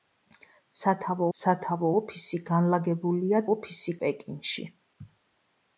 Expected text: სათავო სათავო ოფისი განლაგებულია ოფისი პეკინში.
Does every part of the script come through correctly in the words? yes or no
yes